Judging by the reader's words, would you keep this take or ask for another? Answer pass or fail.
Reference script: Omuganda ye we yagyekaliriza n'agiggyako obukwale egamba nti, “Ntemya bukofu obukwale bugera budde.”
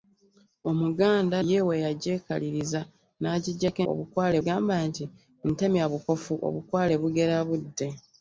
pass